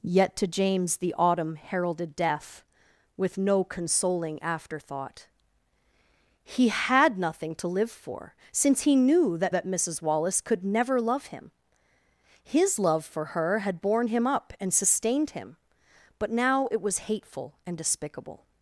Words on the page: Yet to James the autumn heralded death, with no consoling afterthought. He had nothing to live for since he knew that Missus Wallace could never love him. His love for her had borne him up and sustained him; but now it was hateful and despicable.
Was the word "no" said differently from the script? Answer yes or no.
no